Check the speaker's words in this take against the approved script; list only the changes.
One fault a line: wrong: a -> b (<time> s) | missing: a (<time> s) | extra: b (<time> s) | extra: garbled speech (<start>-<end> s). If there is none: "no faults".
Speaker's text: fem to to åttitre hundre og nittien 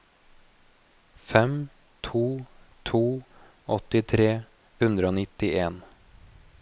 no faults